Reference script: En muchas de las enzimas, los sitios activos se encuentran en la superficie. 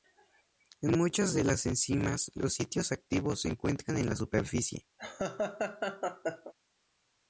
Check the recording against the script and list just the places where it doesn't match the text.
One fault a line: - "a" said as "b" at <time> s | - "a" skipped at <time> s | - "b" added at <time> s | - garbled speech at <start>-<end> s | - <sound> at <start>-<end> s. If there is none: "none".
- laugh at 5.0-6.5 s